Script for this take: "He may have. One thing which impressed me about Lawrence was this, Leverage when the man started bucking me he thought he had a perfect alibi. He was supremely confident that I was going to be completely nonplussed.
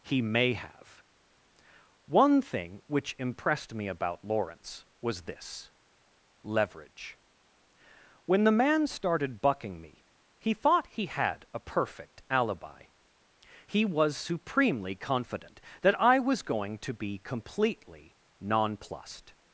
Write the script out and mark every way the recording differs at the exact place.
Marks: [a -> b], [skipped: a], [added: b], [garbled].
"He may have. One thing which impressed me about Lawrence was this, Leverage when the man started bucking me he thought he had a perfect alibi. He was supremely confident that I was going to be completely nonplussed.